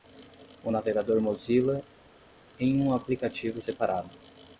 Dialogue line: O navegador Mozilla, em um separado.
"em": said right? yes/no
yes